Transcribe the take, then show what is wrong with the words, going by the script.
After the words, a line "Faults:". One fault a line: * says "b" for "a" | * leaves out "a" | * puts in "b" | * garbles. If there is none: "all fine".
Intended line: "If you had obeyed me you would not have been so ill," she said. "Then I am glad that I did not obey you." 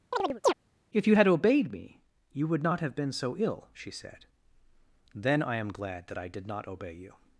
"If you had obeyed me you would not have been so ill," she said. "Then I am glad that I did not obey you."
Faults:
all fine